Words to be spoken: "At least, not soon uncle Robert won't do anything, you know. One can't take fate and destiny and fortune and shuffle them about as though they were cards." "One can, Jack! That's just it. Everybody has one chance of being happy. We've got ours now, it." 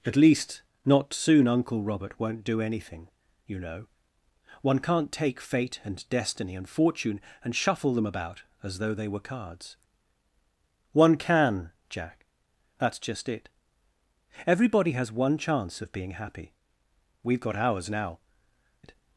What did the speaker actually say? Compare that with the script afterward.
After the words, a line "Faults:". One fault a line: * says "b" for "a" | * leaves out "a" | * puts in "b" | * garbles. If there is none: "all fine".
"At least, not soon uncle Robert won't do anything, you know. One can't take fate and destiny and fortune and shuffle them about as though they were cards." "One can, Jack! That's just it. Everybody has one chance of being happy. We've got ours now, it."
Faults:
all fine